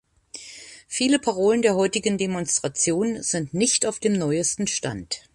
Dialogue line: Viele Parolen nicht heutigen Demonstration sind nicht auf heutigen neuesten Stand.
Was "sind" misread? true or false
false